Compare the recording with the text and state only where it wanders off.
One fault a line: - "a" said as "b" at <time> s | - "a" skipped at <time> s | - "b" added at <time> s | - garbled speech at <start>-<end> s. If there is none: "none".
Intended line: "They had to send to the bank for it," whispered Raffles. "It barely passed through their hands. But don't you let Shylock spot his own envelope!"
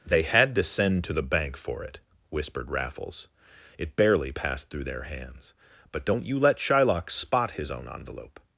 none